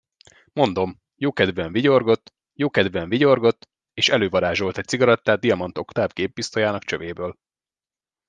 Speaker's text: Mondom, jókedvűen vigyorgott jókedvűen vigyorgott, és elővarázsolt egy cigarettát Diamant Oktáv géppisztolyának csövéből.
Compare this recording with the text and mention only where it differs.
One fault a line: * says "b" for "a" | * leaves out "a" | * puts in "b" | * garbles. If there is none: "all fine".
all fine